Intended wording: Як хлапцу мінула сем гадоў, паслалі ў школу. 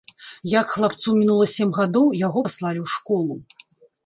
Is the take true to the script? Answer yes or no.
no